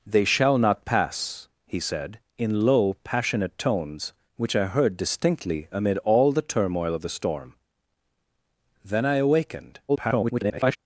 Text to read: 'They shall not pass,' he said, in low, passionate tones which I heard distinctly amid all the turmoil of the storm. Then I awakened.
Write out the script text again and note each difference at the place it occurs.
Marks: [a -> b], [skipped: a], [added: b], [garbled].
'They shall not pass,' he said, in low, passionate tones which I heard distinctly amid all the turmoil of the storm. Then I awakened. [garbled]